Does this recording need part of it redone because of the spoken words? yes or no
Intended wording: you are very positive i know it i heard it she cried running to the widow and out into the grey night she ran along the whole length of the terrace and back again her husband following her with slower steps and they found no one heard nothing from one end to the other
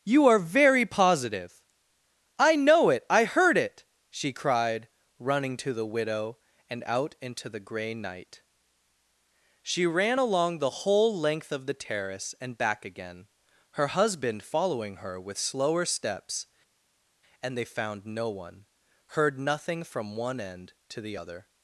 no